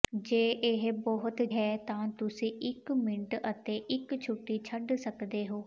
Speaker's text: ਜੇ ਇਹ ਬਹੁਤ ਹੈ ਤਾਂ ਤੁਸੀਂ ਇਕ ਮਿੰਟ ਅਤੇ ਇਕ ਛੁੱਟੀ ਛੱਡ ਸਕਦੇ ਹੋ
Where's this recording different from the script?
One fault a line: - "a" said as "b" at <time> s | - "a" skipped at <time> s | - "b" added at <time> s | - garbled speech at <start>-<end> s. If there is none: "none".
none